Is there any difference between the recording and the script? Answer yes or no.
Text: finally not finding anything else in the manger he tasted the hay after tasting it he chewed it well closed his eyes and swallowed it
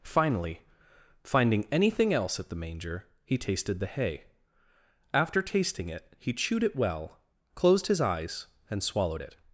yes